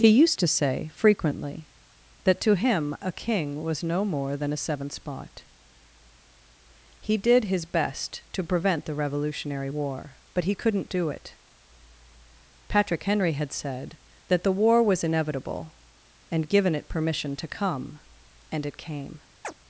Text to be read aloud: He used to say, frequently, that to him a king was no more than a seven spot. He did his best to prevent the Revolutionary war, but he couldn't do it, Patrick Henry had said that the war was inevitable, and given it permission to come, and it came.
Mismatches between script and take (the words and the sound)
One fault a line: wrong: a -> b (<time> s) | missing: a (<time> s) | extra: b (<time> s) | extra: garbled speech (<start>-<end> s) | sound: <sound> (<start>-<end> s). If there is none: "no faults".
wrong: seven -> seventh (4.6 s)
sound: chirp (19.4-19.5 s)